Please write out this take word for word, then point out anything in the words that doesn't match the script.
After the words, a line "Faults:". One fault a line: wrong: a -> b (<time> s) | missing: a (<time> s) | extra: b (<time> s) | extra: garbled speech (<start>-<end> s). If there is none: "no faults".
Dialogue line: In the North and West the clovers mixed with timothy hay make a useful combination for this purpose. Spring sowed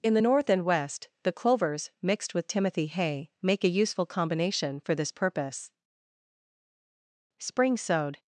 In the North and West the clovers mixed with timothy hay make a useful combination for this purpose. Spring sowed
Faults:
no faults